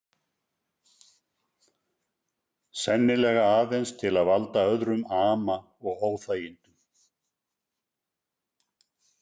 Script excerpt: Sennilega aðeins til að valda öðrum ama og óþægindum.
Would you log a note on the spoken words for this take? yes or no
no